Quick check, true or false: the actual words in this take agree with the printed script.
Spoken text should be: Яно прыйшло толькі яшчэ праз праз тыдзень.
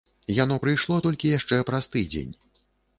false